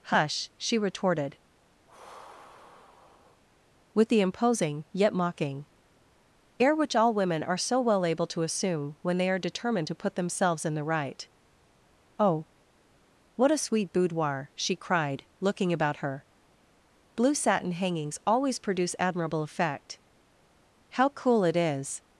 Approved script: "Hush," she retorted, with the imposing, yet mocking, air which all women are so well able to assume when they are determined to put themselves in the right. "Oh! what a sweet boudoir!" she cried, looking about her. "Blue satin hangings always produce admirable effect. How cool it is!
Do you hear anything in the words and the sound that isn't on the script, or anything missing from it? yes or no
yes